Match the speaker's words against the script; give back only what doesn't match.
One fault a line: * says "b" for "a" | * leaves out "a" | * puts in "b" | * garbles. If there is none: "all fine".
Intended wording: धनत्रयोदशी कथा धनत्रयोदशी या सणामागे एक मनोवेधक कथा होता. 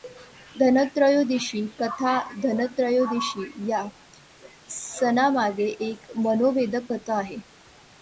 * says "आहे" for "होता"